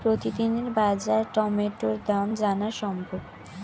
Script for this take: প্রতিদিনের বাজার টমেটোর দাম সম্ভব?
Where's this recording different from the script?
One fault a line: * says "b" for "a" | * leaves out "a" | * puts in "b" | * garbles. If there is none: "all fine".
* puts in "জানা"